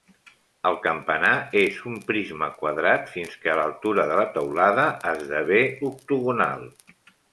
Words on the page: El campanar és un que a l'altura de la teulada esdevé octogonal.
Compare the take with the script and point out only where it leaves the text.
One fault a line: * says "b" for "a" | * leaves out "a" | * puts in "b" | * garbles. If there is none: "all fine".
* puts in "prisma quadrat fins"